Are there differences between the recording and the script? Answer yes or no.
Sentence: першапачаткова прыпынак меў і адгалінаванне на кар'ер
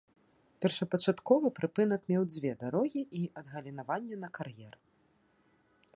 yes